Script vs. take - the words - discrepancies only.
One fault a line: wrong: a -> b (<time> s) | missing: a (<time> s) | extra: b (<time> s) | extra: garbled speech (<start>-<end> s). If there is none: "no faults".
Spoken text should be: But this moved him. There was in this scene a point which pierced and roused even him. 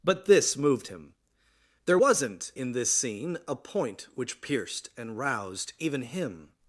wrong: was -> wasn't (1.9 s)